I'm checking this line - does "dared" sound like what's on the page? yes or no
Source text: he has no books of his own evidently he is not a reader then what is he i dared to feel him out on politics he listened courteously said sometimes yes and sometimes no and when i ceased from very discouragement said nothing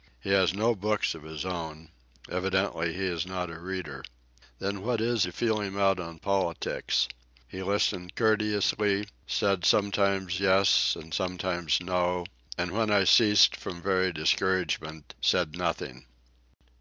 no